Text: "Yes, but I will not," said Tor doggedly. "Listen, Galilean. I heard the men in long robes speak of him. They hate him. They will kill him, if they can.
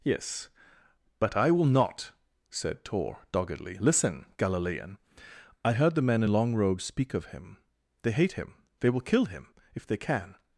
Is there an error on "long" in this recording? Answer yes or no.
no